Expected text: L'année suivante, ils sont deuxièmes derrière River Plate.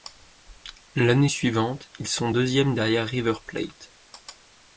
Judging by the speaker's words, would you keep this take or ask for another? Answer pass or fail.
pass